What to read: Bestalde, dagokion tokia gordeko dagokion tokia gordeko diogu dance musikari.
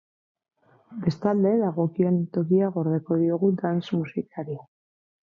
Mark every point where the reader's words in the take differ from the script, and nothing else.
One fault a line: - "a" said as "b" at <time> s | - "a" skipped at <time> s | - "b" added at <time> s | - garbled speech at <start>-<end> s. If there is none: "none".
- "dagokion tokia gordeko" skipped at 3.2 s